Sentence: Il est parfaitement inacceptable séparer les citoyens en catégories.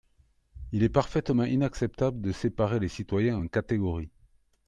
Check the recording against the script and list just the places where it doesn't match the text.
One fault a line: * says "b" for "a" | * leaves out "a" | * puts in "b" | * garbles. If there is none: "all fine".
* puts in "de"